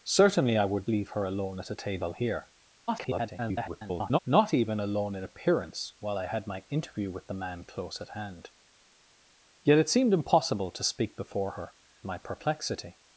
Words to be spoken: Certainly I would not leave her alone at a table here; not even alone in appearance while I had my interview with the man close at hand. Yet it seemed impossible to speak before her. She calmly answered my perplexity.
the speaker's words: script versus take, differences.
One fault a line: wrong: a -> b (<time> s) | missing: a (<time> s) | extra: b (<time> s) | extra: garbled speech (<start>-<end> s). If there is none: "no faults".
missing: not (0.9 s)
extra: garbled speech (2.9-4.2 s)
missing: She calmly answered (11.7 s)